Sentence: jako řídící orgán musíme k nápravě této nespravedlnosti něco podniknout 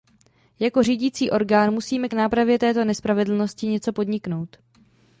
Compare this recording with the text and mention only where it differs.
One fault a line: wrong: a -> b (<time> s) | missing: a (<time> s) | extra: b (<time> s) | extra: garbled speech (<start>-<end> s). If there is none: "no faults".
no faults